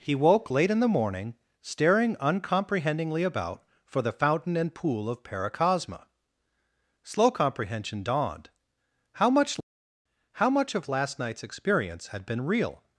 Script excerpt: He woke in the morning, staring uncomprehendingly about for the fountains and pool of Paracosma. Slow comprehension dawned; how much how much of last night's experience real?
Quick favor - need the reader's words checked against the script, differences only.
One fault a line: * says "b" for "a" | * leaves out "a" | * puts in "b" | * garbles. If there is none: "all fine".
* puts in "late"
* says "fountain" for "fountains"
* puts in "had been"